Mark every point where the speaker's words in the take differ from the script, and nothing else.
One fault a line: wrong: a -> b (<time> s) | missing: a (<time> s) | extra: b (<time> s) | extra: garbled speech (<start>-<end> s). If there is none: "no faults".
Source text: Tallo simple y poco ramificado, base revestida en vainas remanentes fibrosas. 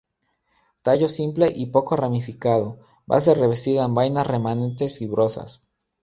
no faults